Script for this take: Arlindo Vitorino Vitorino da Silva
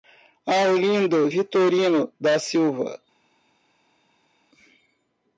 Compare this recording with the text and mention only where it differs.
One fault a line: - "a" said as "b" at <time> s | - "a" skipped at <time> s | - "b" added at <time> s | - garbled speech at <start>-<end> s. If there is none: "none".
- "Vitorino" skipped at 2.1 s